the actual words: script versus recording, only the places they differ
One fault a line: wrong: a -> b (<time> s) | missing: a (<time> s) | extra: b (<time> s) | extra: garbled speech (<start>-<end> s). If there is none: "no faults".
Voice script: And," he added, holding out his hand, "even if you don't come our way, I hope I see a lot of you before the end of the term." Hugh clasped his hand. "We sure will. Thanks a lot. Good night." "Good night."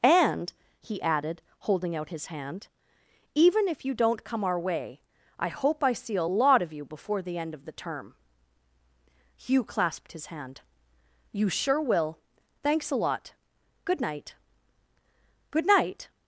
wrong: We -> You (11.3 s)